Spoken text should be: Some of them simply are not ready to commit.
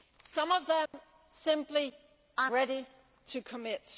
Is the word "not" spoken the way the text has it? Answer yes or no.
no